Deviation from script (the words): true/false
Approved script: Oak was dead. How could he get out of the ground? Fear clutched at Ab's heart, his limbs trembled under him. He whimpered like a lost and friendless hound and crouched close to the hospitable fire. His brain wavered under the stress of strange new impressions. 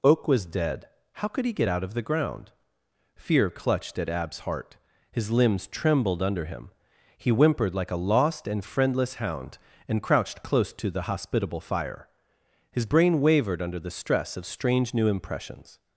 false